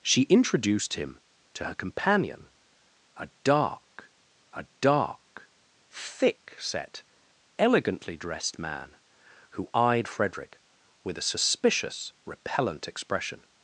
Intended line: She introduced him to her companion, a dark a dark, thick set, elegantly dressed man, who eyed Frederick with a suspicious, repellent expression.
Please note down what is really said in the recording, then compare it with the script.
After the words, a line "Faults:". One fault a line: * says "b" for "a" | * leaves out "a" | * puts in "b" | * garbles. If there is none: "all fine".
She introduced him to her companion, a dark a dark, thick set, elegantly dressed man, who eyed Frederick with a suspicious, repellent expression.
Faults:
all fine